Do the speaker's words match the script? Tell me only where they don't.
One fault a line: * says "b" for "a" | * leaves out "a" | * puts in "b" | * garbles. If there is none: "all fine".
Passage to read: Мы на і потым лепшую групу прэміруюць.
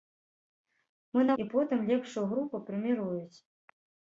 all fine